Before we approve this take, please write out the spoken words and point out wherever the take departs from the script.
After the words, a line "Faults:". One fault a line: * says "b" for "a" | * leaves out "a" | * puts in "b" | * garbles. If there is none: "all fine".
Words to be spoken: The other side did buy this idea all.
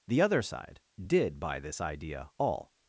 The other side did buy this idea all.
Faults:
all fine